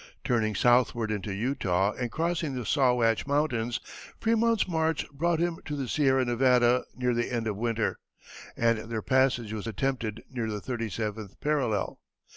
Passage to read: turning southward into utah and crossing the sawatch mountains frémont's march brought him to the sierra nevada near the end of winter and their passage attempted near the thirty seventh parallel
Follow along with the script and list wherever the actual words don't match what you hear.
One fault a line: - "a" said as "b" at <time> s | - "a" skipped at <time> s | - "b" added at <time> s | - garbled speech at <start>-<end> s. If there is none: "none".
- "was" added at 9.5 s